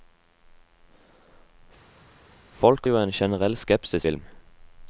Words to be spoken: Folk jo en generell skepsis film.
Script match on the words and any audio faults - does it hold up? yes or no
yes